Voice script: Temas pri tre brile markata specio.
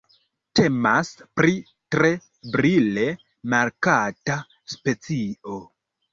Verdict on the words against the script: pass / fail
pass